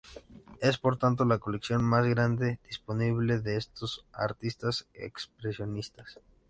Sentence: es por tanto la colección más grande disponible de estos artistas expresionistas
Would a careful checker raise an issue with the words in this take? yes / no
no